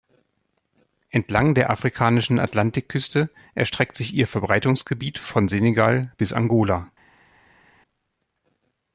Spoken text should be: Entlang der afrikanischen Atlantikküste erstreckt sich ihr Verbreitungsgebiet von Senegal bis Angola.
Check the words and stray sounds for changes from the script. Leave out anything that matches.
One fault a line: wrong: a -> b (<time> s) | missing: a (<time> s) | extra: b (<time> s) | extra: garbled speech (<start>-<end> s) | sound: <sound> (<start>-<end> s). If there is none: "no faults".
no faults